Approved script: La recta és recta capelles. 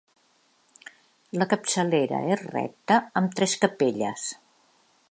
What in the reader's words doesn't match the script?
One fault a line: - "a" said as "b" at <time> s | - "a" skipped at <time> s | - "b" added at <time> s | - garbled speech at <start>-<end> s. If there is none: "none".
- "recta" said as "capçalera" at 1.5 s
- "amb tres" added at 3.2 s